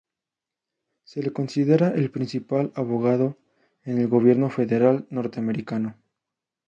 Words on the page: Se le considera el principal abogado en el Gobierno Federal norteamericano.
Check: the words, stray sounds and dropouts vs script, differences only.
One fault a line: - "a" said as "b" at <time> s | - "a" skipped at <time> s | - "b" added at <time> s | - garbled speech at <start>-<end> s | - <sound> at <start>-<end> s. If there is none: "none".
none